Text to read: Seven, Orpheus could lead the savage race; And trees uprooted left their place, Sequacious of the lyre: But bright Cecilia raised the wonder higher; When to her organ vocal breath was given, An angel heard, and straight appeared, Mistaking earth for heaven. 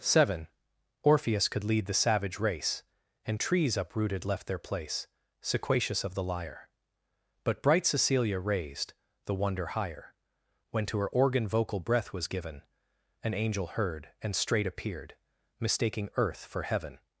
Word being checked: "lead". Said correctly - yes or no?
yes